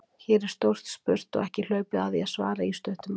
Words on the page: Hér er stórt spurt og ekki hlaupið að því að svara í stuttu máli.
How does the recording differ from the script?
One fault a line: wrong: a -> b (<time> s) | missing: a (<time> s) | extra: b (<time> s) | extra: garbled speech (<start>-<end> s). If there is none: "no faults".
no faults